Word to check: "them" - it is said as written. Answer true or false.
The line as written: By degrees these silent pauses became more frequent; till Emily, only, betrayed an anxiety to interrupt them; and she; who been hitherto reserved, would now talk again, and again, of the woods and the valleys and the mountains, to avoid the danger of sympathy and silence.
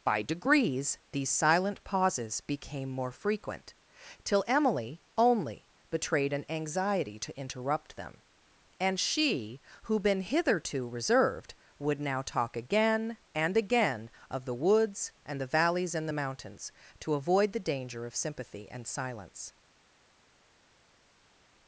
true